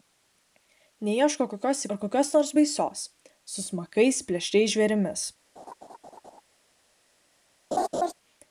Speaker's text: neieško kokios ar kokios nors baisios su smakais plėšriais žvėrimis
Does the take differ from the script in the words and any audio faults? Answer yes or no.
yes